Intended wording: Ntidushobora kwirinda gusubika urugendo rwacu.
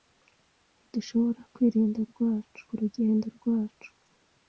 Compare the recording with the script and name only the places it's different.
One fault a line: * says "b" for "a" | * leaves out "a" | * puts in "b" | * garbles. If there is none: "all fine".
* says "rwacu" for "gusubika"